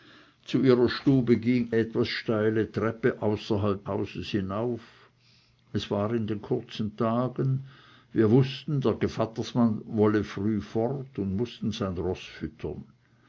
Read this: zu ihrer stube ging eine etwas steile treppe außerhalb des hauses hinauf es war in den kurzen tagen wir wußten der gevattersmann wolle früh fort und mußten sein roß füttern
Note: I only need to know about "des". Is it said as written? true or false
false